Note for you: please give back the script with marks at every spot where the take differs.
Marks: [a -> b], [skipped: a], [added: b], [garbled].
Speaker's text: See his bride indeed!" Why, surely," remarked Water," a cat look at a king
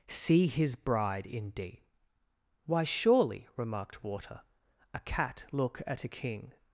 See his bride indeed!" Why, surely," remarked Water," a cat look at a king